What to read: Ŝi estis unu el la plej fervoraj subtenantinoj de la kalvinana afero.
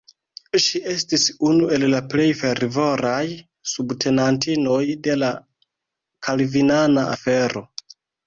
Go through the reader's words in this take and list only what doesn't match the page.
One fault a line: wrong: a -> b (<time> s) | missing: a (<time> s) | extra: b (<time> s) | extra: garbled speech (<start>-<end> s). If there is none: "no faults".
no faults